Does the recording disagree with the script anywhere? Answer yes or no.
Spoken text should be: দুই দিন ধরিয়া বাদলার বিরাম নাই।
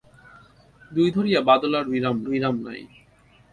yes